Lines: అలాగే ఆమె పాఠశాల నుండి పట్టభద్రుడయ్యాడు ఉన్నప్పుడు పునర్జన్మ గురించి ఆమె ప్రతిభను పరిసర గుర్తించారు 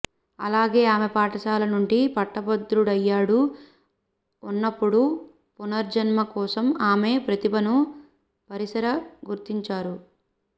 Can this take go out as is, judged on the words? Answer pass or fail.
fail